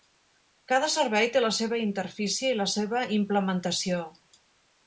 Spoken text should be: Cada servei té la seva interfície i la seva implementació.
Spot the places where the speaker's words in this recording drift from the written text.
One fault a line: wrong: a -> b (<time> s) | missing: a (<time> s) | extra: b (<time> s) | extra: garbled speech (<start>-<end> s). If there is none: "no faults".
no faults